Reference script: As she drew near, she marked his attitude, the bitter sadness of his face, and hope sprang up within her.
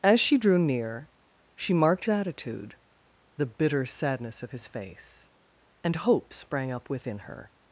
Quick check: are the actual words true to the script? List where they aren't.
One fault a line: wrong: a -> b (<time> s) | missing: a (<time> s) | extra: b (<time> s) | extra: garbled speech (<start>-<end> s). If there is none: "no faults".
missing: his (2.0 s)